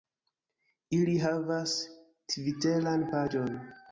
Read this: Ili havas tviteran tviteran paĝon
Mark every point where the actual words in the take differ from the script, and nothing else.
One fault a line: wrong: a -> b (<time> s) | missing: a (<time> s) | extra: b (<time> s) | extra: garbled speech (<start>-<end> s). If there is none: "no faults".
missing: tviteran (3.1 s)